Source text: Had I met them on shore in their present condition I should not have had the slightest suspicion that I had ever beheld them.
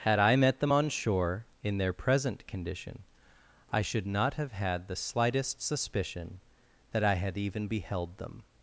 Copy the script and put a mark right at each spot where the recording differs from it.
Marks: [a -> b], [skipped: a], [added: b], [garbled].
Had I met them on shore in their present condition I should not have had the slightest suspicion that I had [ever -> even] beheld them.